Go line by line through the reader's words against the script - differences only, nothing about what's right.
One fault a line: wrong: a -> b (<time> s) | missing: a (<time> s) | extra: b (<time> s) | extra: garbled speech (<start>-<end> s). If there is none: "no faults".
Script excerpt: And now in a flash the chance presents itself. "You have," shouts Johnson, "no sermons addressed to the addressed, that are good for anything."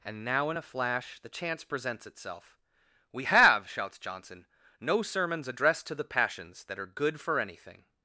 wrong: You -> We (3.1 s)
wrong: addressed -> passions (6.0 s)